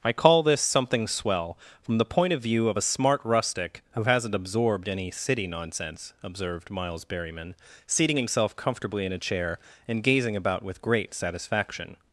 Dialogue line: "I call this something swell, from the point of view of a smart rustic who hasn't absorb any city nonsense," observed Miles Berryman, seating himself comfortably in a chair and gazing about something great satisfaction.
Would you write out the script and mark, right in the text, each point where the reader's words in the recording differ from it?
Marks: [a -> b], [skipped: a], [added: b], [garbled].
"I call this something swell, from the point of view of a smart rustic who hasn't [absorb -> absorbed] any city nonsense," observed Miles Berryman, seating himself comfortably in a chair and gazing about [something -> with] great satisfaction.